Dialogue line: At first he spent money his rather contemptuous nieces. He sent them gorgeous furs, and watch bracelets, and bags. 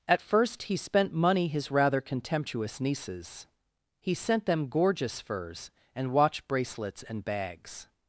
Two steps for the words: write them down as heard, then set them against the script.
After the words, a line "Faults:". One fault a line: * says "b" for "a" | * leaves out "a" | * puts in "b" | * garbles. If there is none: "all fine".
At first he spent money his rather contemptuous nieces. He sent them gorgeous furs, and watch bracelets, and bags.
Faults:
all fine